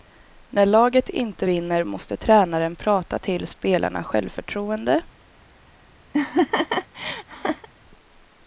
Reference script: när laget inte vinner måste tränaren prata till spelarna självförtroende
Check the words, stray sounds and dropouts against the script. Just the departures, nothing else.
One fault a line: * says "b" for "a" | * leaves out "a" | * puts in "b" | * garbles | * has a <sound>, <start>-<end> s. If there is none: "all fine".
* has a laugh, 6.1-7.7 s